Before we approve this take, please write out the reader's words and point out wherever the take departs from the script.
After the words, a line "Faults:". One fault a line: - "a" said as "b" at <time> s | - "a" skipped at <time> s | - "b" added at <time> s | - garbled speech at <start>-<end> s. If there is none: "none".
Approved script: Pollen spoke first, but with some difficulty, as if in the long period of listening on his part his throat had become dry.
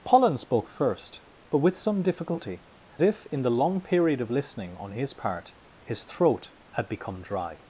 Pollen spoke first, but with some difficulty, if in the long period of listening on his part his throat had become dry.
Faults:
- "as" skipped at 2.6 s